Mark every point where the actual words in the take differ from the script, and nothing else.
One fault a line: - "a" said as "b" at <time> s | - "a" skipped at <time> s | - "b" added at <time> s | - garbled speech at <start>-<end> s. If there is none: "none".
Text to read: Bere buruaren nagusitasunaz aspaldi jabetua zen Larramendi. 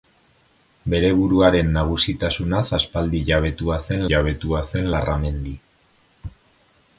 - "jabetua zen" added at 4.1 s